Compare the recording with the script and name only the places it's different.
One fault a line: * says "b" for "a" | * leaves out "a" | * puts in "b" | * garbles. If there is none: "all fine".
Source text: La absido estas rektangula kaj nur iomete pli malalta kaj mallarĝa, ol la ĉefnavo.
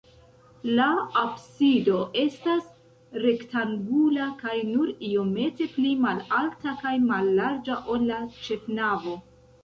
all fine